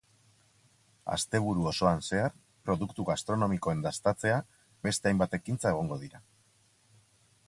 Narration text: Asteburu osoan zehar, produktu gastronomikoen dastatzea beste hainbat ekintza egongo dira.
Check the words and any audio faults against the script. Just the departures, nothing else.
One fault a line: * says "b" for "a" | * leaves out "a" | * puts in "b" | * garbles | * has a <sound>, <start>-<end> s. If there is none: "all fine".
all fine